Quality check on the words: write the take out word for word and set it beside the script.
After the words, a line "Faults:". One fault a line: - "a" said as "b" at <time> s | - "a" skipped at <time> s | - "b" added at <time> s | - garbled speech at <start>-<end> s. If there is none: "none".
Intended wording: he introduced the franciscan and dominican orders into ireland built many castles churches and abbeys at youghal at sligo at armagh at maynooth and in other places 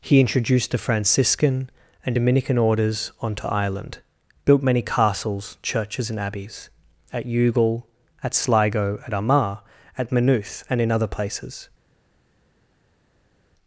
he introduced the franciscan and dominican orders onto ireland built many castles churches and abbeys at youghal at sligo at armagh at maynooth and in other places
Faults:
- "into" said as "onto" at 3.2 s